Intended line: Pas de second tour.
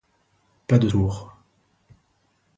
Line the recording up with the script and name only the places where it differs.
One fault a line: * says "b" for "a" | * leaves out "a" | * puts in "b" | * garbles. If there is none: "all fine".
* leaves out "second"